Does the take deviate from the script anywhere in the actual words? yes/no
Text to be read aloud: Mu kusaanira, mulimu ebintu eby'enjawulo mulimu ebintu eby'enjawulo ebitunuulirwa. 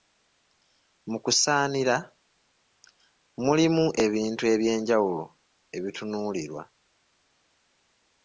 yes